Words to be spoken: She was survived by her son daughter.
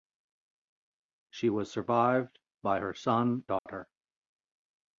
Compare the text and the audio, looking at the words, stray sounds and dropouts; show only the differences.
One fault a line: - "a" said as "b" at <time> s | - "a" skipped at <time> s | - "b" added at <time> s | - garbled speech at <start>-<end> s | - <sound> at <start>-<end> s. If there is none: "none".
- dropout at 3.6-3.7 s